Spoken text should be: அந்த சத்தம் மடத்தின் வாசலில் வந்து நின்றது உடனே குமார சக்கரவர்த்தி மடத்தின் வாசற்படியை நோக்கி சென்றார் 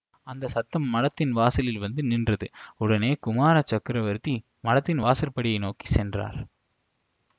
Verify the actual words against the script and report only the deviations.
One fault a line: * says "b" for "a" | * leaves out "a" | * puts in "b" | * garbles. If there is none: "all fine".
all fine